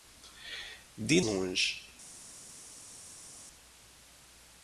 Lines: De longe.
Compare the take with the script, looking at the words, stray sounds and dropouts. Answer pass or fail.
pass